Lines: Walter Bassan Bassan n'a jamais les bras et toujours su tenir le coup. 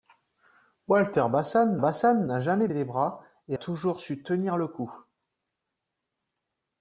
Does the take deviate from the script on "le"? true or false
false